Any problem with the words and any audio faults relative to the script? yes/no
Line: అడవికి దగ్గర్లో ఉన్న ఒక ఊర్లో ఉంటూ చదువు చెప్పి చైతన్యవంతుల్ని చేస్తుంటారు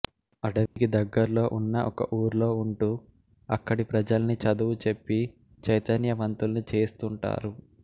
yes